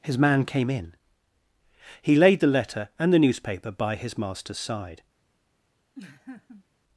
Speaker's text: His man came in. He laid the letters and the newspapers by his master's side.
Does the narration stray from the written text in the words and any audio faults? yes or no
yes